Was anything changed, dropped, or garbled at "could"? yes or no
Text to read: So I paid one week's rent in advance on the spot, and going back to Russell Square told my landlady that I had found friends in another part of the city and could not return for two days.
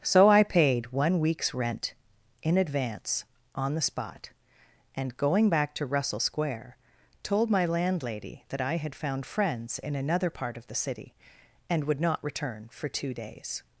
yes